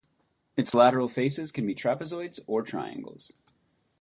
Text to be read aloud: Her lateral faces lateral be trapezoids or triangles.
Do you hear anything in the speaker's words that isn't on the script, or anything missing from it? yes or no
yes